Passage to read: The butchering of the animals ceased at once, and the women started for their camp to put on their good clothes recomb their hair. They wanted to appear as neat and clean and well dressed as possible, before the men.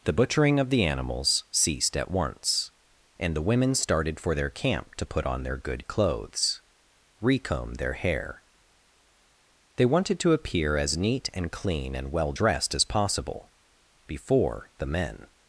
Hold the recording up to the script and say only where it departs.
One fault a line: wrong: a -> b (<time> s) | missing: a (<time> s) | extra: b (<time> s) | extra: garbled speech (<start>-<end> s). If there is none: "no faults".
no faults